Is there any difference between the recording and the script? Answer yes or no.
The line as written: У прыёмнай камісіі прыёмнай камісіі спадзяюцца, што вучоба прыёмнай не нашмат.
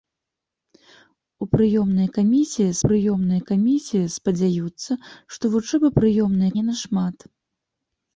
no